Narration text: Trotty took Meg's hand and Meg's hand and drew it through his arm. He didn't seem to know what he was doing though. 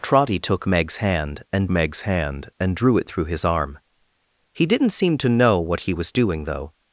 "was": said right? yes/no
yes